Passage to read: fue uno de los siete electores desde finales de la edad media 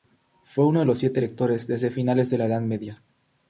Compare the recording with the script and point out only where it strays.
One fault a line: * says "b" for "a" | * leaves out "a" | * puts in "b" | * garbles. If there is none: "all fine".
all fine